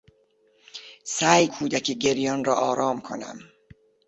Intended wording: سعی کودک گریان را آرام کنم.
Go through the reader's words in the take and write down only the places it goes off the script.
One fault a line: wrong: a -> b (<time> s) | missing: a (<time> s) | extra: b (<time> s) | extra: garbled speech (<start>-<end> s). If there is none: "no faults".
no faults